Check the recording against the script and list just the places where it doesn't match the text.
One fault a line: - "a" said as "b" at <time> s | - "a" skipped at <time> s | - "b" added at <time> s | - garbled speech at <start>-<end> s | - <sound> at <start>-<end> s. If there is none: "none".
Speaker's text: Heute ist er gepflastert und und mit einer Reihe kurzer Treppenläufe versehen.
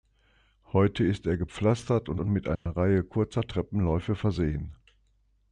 - dropout at 2.6-2.7 s